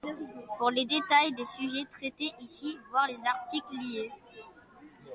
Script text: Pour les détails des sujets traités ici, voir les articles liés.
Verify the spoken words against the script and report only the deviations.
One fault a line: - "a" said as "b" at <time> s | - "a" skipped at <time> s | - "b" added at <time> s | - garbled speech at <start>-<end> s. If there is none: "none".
none